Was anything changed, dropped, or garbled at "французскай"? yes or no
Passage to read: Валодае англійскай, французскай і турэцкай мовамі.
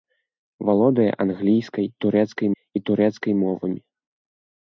yes